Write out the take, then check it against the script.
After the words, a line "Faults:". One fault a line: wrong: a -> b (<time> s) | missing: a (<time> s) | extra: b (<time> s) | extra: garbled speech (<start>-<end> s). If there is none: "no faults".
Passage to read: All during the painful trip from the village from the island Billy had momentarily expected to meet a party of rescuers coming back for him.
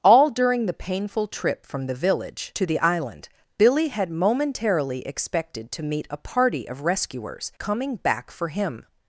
All during the painful trip from the village to the island Billy had momentarily expected to meet a party of rescuers coming back for him.
Faults:
wrong: from -> to (2.5 s)